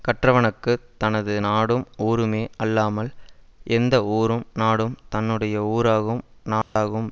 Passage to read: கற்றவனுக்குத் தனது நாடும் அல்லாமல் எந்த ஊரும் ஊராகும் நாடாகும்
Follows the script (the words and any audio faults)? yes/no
no